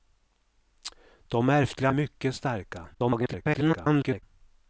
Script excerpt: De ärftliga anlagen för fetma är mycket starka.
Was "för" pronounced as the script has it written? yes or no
no